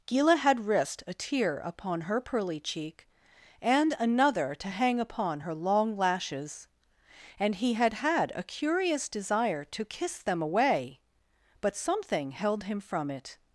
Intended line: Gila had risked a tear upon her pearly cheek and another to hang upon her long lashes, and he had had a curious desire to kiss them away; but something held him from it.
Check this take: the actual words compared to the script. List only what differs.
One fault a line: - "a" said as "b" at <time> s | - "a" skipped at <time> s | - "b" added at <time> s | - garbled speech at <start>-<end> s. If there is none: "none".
none